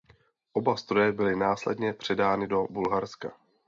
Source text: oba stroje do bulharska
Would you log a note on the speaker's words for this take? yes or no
yes